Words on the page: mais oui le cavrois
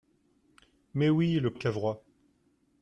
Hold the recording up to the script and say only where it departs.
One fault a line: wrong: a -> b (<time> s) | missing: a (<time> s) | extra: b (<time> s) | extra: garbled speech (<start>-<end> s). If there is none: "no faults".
no faults